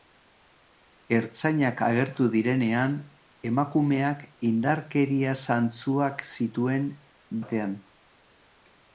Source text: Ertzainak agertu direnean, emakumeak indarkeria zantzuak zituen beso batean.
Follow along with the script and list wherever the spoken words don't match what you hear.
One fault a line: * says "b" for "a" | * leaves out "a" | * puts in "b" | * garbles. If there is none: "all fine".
* leaves out "beso"